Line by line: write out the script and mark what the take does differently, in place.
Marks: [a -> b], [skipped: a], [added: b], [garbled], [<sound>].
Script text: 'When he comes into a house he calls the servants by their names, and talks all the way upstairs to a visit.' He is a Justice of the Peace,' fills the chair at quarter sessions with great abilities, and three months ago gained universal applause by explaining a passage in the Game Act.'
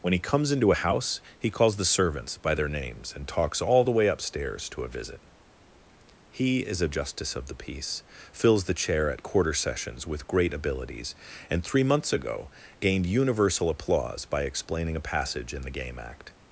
'When he comes into a house he calls the servants by their names, and talks all the way upstairs to a visit.' He is a Justice of the Peace,' fills the chair at quarter sessions with great abilities, and three months ago gained universal applause by explaining a passage in the Game Act.'